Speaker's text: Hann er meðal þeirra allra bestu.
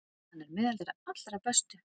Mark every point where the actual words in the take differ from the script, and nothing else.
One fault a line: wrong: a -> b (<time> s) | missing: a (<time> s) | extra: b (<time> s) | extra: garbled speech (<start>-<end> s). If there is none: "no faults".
no faults